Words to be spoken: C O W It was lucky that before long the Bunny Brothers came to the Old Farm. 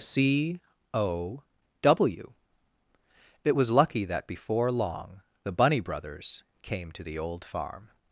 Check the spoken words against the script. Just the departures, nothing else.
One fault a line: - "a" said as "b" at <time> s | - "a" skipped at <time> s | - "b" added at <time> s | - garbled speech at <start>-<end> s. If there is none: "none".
none